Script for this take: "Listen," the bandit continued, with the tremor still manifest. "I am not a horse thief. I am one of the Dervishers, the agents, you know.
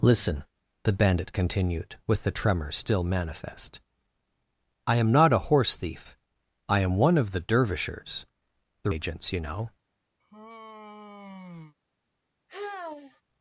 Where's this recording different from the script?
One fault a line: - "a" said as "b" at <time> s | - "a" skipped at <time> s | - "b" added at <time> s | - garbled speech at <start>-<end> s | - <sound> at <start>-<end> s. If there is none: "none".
- sigh at 10.2-11.7 s
- sigh at 12.5-13.2 s